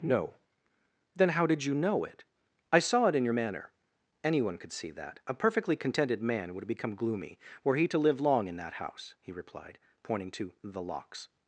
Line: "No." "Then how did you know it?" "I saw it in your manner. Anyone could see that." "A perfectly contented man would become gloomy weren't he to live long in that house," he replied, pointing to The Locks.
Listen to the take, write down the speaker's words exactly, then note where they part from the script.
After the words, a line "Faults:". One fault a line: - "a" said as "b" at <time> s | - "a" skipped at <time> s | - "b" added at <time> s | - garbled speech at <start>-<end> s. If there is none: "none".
"No." "Then how did you know it?" "I saw it in your manner. Anyone could see that." "A perfectly contented man would become gloomy were he to live long in that house," he replied, pointing to The Locks.
Faults:
- "weren't" said as "were" at 7.6 s